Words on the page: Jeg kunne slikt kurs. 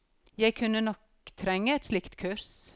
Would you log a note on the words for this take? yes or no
yes